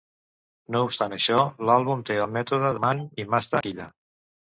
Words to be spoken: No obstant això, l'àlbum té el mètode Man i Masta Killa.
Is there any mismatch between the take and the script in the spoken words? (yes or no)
no